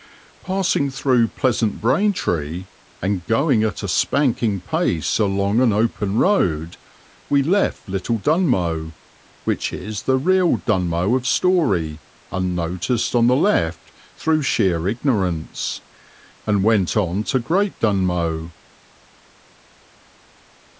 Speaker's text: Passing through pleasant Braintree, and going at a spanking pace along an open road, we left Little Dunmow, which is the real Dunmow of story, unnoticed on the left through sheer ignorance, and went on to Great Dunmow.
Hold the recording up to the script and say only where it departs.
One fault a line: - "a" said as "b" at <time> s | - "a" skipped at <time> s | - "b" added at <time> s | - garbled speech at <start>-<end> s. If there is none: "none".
none